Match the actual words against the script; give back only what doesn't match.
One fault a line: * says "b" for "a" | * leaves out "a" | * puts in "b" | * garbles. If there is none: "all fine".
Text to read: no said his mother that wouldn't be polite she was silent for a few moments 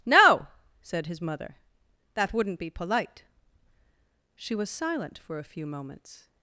all fine